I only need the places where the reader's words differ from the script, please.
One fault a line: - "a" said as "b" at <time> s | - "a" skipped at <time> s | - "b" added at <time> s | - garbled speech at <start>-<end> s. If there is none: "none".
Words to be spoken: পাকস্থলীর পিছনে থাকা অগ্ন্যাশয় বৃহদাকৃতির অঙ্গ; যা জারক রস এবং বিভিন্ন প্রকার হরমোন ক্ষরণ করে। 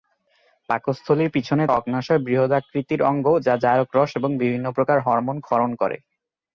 - "থাকা" skipped at 1.6 s